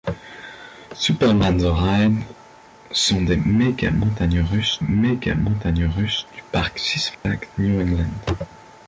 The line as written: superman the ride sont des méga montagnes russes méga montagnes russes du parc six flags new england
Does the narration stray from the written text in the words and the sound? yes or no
yes